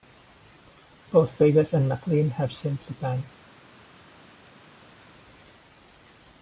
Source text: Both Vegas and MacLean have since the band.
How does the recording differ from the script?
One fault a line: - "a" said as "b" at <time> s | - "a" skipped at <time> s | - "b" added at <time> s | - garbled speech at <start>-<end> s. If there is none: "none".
none